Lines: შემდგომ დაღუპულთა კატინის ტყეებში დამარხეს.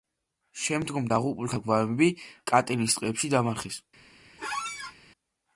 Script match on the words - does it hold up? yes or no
no